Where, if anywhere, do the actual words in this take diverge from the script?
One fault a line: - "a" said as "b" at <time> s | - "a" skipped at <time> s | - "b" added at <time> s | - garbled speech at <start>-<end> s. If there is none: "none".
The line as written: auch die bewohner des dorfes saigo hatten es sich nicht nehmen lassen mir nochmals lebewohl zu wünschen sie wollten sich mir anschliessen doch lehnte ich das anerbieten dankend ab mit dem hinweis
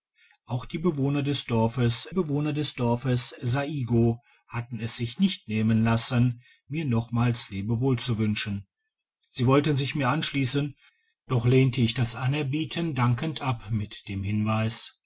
- "bewohner des dorfes" added at 2.1 s